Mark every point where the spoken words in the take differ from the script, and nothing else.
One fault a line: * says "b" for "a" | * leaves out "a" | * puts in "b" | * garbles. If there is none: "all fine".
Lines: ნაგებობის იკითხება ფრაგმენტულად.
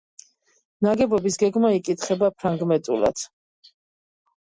* puts in "გეგმა"